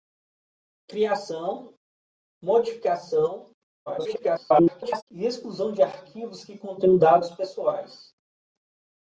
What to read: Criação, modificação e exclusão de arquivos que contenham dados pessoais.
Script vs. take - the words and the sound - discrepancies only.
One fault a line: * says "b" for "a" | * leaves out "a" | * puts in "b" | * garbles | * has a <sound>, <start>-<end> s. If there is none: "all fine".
* garbles